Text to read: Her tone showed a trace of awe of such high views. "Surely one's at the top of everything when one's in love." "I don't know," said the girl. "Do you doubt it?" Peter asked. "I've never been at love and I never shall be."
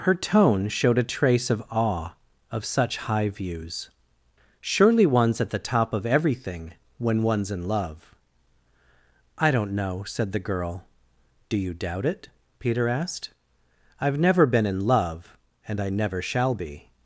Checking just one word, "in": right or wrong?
right